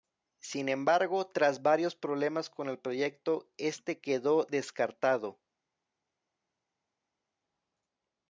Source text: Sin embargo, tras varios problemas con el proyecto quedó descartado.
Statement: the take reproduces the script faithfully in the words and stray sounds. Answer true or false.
false